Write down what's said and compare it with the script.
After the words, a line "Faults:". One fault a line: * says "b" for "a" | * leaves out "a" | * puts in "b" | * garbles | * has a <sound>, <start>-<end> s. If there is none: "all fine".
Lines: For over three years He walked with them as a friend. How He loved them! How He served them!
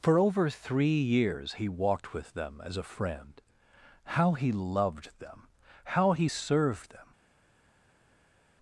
For over three years He walked with them as a friend. How He loved them! How He served them!
Faults:
all fine